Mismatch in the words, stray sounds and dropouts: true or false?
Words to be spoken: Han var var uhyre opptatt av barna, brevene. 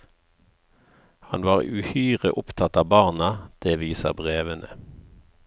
true